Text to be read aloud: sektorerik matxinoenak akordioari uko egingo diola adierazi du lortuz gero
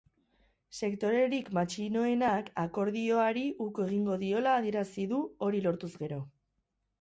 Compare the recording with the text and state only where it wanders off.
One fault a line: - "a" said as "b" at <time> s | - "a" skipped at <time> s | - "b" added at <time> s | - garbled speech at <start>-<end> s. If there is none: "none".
- "hori" added at 5.5 s